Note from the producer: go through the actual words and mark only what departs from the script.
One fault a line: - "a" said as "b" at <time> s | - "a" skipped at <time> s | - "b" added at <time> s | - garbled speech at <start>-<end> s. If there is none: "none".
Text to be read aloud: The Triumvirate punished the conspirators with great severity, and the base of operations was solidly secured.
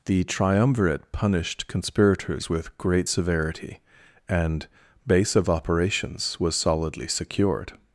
- "the" skipped at 1.7 s
- "the" skipped at 4.7 s